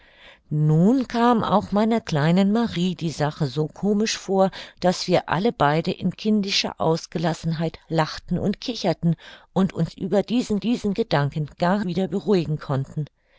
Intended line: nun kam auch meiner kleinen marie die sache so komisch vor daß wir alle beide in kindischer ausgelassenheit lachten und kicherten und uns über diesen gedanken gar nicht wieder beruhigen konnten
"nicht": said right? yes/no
no